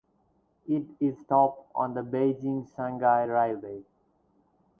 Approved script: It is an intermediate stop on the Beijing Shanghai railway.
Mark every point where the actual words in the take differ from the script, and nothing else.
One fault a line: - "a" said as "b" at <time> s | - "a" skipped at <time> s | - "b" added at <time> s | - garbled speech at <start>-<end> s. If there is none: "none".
- "an intermediate" skipped at 1.2 s